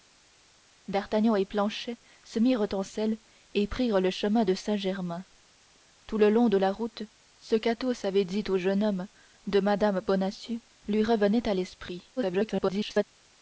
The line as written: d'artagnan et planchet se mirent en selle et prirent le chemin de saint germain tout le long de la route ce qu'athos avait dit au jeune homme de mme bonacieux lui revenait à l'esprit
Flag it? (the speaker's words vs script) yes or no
yes